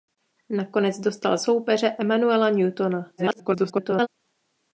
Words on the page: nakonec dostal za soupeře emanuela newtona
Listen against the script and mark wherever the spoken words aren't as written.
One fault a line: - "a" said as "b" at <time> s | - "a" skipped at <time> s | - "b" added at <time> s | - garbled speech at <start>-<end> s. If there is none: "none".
- "za" skipped at 1.4 s
- garbled speech at 3.2-4.1 s